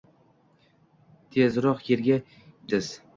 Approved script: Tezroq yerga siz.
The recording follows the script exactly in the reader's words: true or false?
true